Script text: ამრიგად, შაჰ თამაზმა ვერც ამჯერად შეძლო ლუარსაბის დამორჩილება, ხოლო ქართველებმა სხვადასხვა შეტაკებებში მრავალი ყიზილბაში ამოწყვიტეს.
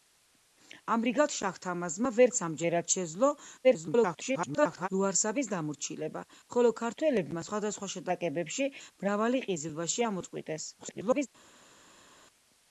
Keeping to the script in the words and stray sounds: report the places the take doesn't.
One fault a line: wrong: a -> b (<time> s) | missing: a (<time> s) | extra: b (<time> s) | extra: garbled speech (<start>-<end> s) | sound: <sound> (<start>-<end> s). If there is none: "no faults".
extra: garbled speech (3.6-4.9 s)
extra: garbled speech (10.8-11.3 s)